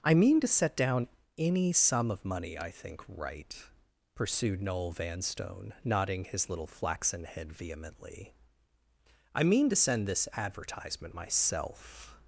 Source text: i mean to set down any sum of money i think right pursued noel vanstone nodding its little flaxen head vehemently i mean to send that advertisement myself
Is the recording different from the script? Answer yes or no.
yes